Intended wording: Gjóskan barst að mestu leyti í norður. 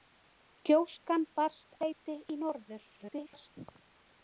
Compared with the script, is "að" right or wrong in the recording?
wrong